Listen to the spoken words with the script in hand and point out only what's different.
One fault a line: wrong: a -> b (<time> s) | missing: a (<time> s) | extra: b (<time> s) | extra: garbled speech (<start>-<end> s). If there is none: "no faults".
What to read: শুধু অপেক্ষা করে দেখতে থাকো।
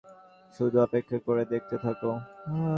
no faults